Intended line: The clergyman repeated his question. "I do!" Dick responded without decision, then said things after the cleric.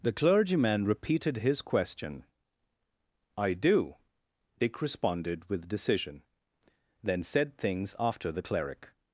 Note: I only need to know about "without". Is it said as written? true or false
false